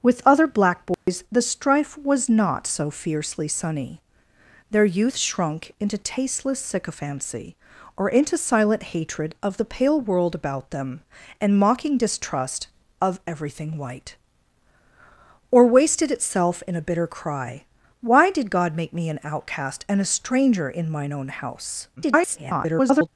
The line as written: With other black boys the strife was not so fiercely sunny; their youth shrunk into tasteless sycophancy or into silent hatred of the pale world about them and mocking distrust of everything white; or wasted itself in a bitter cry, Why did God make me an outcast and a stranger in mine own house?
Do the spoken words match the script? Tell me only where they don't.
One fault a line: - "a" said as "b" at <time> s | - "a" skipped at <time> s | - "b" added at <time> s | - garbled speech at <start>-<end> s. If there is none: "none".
- garbled speech at 22.0-23.1 s